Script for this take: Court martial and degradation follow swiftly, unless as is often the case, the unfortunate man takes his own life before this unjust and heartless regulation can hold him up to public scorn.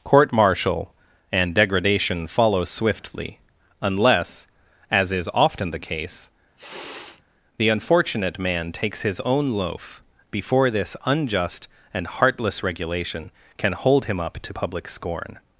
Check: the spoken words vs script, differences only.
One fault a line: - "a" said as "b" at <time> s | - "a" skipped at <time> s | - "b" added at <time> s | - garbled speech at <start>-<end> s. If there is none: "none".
- "life" said as "loaf" at 9.5 s